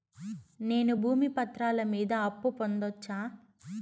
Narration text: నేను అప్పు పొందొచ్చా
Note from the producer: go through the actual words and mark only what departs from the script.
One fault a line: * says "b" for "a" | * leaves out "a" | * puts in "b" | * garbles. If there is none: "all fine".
* puts in "భూమి పత్రాల మీద"